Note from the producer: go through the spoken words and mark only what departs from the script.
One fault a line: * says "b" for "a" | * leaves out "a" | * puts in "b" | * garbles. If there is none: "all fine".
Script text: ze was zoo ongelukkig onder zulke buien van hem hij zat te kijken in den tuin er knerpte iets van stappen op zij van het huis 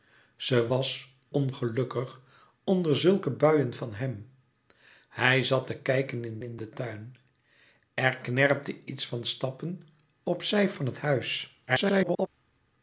* leaves out "zoo"
* puts in "in"
* garbles